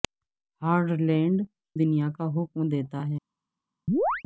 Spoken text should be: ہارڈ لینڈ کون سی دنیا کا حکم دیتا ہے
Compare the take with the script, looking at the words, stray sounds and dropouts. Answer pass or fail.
fail